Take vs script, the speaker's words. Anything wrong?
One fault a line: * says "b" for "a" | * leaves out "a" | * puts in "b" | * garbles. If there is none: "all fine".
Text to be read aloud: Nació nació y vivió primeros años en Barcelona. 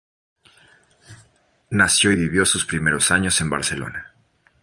* leaves out "nació"
* puts in "sus"